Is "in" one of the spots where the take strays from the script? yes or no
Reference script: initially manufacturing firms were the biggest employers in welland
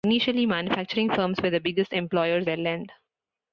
yes